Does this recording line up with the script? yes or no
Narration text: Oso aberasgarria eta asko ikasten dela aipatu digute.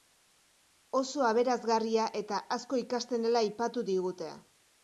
yes